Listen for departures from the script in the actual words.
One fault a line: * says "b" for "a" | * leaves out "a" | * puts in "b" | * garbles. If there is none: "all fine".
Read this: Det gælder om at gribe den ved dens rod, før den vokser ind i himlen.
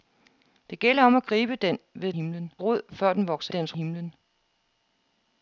* says "himlen" for "dens"
* says "dens" for "ind"